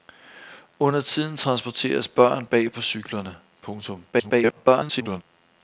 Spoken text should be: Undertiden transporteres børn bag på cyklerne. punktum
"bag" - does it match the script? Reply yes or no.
yes